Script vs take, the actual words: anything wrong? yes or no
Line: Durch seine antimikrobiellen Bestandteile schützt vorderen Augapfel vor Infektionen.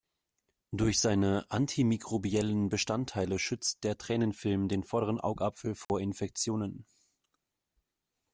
yes